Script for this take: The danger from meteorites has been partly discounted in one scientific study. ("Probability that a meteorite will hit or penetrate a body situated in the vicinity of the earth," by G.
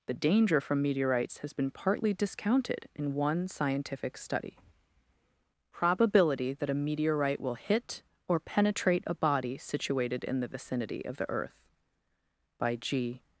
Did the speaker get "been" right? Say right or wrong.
right